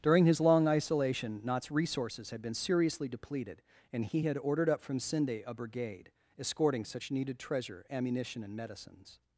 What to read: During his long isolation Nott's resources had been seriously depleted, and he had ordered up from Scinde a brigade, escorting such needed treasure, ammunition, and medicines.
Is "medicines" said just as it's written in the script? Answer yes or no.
yes